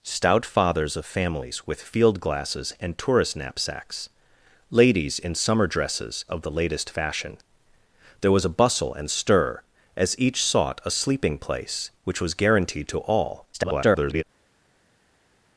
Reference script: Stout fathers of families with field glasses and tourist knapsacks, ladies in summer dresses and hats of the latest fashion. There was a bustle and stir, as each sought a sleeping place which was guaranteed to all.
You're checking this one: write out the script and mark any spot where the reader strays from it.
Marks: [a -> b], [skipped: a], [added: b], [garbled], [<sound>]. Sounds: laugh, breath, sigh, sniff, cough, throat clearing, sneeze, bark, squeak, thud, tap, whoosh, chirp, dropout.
Stout fathers of families with field glasses and tourist knapsacks, ladies in summer dresses [skipped: and hats] of the latest fashion. There was a bustle and stir, as each sought a sleeping place which was guaranteed to all. [garbled]